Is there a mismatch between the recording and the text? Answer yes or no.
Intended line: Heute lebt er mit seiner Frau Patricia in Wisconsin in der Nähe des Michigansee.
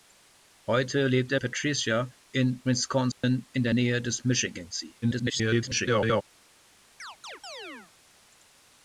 yes